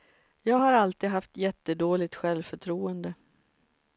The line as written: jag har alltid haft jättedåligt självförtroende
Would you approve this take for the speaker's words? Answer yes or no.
yes